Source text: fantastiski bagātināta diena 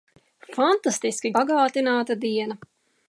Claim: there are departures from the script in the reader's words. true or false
false